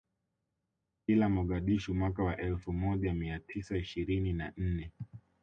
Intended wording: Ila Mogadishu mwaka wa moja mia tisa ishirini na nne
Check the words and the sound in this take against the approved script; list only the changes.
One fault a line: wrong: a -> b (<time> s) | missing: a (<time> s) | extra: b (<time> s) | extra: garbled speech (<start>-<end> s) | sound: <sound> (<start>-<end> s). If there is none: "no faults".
extra: elfu (2.4 s)